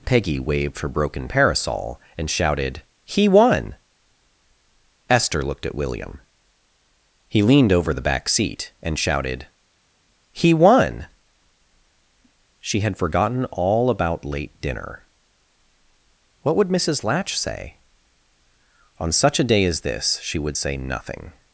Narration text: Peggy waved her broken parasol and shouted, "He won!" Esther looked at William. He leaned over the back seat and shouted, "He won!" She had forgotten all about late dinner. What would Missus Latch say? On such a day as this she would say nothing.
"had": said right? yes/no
yes